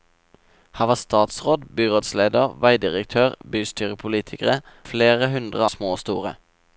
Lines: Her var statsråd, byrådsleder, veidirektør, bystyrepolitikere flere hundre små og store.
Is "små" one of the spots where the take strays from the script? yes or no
no